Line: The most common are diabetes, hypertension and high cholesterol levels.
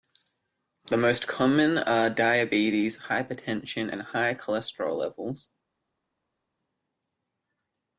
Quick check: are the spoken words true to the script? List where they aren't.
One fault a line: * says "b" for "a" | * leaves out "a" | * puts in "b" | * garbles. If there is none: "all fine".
all fine